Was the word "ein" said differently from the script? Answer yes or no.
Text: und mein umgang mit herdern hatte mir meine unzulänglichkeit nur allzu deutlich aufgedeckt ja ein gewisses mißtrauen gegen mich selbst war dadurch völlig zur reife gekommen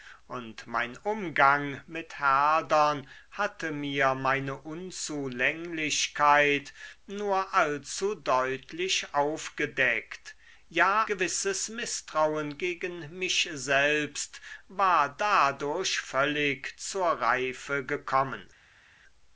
yes